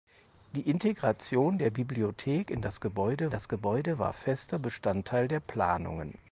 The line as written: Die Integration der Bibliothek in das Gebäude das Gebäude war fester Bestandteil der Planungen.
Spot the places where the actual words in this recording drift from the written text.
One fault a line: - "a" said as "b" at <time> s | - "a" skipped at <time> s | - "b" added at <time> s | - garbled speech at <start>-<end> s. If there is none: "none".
none